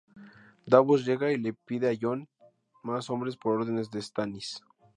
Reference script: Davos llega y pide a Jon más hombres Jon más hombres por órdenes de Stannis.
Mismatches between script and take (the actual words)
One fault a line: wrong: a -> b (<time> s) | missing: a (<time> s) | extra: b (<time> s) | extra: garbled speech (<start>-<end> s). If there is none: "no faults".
extra: le (1.4 s)
missing: Jon más hombres (3.3 s)